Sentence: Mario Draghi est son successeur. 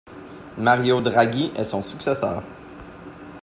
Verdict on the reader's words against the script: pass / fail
pass